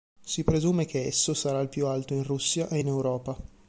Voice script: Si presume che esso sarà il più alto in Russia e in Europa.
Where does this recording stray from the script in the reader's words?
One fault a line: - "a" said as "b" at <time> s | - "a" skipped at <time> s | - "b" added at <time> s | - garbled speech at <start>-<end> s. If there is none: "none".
none